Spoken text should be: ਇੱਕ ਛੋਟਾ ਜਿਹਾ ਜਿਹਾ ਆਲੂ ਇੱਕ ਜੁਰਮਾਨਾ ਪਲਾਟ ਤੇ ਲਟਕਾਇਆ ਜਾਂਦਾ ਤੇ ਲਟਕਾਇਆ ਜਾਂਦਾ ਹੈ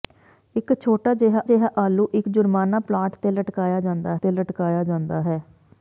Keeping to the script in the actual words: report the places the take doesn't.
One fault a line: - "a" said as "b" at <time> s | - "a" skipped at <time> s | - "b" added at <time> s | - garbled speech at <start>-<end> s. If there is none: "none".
none